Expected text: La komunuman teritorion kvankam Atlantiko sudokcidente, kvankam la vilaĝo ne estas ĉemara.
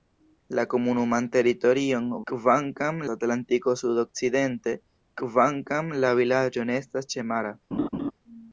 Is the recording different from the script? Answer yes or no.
no